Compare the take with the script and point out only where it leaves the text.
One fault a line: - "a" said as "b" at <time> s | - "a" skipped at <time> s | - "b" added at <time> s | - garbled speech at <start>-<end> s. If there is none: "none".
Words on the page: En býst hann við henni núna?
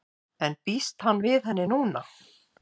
none